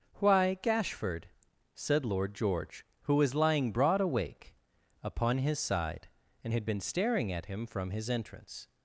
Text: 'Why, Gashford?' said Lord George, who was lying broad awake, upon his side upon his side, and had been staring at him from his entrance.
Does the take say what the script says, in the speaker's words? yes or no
no